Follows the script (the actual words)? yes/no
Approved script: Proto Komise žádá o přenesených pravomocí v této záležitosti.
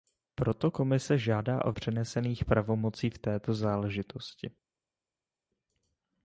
yes